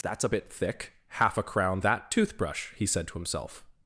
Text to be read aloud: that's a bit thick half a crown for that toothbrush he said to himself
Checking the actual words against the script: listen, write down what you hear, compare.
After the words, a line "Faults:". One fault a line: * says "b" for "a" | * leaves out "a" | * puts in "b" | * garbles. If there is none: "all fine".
that's a bit thick half a crown that toothbrush he said to himself
Faults:
* leaves out "for"